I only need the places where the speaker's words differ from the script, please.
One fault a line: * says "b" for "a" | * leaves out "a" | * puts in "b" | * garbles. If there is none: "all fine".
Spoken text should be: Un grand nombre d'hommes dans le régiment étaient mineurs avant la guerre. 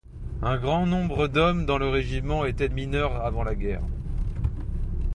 all fine